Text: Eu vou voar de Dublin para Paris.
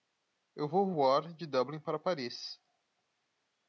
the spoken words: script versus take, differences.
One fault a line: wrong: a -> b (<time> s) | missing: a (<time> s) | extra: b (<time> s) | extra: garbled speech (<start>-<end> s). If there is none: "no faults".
no faults